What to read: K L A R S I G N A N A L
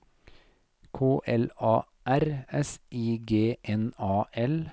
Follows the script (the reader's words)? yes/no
no